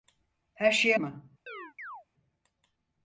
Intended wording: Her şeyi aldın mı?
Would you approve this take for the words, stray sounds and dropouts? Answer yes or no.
no